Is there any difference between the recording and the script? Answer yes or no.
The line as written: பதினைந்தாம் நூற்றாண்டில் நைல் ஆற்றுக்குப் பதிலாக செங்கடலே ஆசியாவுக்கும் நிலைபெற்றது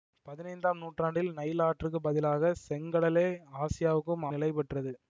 no